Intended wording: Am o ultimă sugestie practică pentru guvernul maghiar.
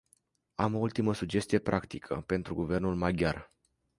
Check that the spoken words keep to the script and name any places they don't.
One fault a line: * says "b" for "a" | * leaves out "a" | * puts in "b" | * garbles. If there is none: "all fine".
all fine